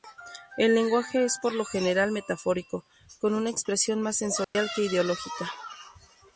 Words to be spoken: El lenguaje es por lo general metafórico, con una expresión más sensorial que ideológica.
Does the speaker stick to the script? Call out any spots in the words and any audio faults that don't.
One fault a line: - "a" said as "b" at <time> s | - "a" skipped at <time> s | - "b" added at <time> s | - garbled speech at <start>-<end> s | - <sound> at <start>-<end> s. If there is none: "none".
- dropout at 4.4-4.6 s